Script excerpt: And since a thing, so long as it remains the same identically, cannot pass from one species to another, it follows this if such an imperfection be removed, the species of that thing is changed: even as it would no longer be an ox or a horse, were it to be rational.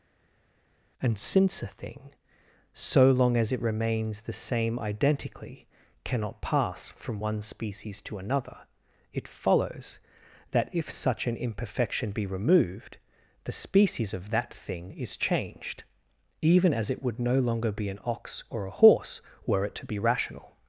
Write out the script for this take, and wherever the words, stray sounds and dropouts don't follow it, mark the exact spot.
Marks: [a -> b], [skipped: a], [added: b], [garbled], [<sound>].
And since a thing, so long as it remains the same identically, cannot pass from one species to another, it follows [this -> that] if such an imperfection be removed, the species of that thing is changed: even as it would no longer be an ox or a horse, were it to be rational.